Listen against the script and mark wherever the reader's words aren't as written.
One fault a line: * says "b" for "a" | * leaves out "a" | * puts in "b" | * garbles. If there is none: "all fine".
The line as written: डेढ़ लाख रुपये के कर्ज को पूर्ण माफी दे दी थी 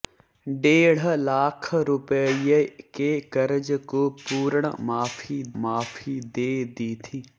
* puts in "माफी"